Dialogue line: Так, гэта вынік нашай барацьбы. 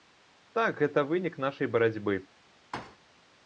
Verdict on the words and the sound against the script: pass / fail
fail